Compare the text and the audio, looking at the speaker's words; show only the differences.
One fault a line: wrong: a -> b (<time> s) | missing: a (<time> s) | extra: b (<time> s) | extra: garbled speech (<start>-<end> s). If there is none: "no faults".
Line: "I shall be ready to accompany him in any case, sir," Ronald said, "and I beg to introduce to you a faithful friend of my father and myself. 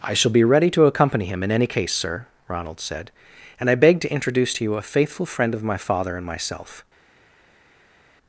no faults